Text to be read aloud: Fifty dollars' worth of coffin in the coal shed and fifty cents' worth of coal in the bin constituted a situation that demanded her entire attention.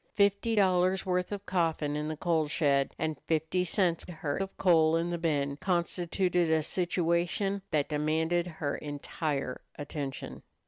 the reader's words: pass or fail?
fail